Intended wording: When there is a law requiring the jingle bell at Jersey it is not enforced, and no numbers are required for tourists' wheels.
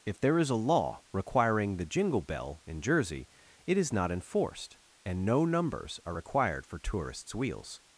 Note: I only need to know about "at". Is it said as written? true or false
false